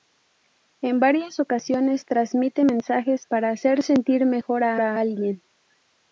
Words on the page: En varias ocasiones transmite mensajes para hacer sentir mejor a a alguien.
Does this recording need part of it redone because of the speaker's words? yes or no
no